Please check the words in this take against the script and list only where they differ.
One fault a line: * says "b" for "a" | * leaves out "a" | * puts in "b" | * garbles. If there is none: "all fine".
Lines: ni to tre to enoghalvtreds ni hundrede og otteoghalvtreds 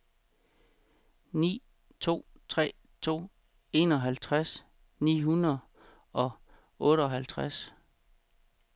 all fine